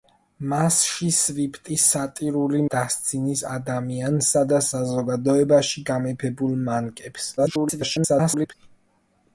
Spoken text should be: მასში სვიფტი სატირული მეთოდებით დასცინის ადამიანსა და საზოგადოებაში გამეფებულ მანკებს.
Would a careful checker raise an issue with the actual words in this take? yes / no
yes